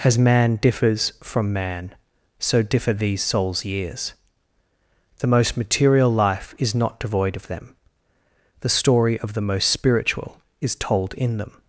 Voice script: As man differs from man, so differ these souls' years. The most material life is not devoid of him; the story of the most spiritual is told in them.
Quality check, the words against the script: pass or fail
fail